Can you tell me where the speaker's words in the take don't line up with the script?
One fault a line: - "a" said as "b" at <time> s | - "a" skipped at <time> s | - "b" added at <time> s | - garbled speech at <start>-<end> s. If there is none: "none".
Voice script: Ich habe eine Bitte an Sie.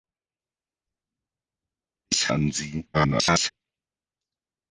- "habe eine Bitte" skipped at 2.3 s
- garbled speech at 2.9-3.5 s